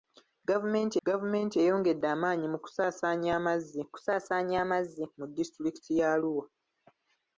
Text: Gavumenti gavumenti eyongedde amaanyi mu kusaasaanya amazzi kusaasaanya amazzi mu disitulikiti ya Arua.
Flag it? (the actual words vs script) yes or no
no